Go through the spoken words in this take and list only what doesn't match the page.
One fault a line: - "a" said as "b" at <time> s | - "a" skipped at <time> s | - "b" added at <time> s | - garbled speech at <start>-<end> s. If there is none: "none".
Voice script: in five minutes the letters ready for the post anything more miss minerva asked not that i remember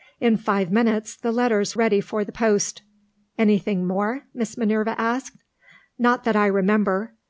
none